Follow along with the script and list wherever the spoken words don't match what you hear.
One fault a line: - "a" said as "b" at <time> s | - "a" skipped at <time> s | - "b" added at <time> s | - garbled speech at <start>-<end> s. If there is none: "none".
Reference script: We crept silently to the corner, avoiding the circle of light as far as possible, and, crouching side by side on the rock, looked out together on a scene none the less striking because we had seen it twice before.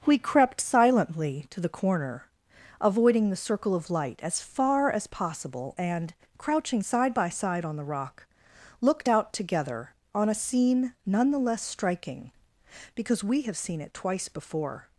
- "had" said as "have" at 13.4 s